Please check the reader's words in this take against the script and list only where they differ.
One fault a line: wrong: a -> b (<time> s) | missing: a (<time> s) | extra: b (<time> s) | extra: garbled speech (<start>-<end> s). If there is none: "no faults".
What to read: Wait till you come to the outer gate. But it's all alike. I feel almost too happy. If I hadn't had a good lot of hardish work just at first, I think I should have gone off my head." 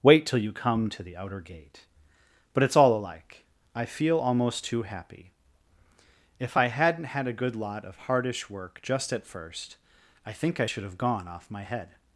no faults